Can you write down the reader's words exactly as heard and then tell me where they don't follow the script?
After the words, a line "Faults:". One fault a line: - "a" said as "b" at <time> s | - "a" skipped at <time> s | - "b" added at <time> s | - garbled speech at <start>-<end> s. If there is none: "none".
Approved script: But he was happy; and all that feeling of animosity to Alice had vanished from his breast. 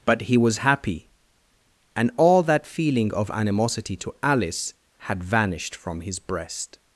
But he was happy; and all that feeling of animosity to Alice had vanished from his breast.
Faults:
none